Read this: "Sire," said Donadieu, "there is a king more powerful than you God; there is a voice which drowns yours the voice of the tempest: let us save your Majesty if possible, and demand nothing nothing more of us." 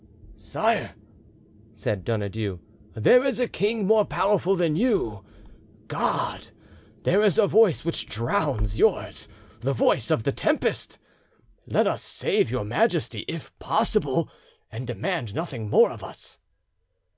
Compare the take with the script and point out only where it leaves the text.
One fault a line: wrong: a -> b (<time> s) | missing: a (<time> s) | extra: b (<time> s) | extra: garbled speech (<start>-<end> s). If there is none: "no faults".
missing: nothing (15.7 s)